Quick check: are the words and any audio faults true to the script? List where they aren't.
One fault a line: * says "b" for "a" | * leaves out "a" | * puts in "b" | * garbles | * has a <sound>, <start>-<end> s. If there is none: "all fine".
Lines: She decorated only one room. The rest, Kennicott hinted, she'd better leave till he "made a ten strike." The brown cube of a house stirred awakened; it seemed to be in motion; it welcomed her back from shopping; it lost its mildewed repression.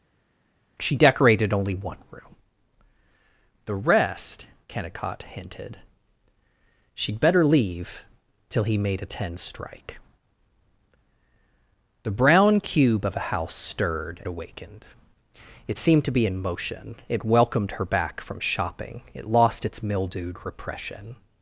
all fine